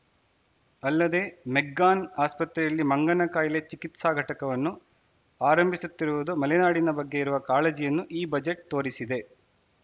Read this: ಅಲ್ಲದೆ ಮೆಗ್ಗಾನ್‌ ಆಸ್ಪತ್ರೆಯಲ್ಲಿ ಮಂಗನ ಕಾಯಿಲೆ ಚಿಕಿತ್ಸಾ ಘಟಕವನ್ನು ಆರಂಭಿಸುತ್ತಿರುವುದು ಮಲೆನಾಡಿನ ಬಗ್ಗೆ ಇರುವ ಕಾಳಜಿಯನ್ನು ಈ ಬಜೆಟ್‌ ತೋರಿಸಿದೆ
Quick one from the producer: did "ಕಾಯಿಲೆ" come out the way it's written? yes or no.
yes